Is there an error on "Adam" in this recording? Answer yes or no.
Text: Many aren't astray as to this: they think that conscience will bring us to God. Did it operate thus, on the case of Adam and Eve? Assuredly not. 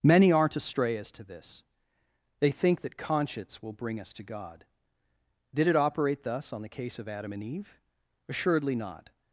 no